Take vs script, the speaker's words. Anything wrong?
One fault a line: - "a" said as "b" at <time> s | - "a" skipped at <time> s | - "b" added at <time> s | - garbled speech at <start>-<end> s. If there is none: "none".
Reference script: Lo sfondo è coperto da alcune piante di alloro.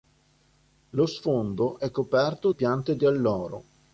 - "da alcune" skipped at 2.5 s